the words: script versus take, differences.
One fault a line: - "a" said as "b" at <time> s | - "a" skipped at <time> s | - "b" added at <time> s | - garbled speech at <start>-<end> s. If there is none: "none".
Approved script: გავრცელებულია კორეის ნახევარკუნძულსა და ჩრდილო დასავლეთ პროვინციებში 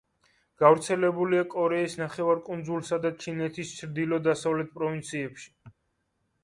- "ჩინეთის" added at 3.3 s